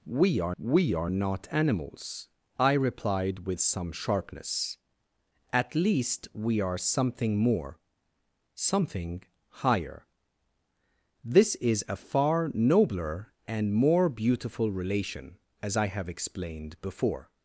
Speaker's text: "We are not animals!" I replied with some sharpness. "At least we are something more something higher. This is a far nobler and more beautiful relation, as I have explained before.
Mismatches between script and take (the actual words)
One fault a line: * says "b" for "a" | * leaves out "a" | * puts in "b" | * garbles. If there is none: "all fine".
* puts in "we are"